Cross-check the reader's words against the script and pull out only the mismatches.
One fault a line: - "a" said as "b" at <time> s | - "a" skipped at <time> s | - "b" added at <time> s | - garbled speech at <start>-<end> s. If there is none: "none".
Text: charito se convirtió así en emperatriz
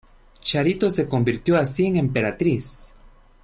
none